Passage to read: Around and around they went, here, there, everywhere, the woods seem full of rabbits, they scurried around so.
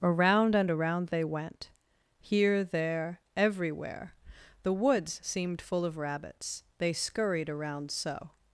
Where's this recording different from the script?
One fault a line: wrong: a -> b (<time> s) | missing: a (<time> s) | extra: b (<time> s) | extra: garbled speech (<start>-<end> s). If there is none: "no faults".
wrong: seem -> seemed (5.2 s)